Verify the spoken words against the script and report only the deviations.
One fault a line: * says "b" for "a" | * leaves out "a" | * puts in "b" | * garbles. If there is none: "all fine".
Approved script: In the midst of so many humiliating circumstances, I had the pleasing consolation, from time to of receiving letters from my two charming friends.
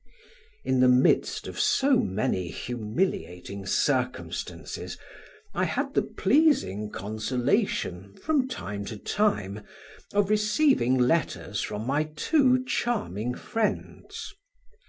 * puts in "time"